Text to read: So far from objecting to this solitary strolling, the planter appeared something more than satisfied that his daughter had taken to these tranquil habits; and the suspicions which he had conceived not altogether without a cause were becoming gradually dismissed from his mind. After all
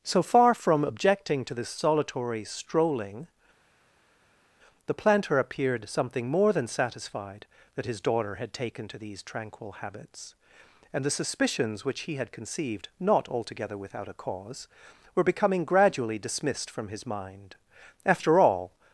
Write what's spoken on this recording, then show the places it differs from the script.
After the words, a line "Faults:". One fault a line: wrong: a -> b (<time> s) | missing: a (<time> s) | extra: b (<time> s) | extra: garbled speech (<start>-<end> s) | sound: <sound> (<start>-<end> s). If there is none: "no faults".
So far from objecting to this solitary strolling, the planter appeared something more than satisfied that his daughter had taken to these tranquil habits; and the suspicions which he had conceived not altogether without a cause were becoming gradually dismissed from his mind. After all
Faults:
no faults